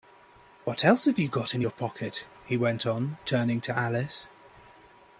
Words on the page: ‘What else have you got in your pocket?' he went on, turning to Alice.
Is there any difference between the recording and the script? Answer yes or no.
no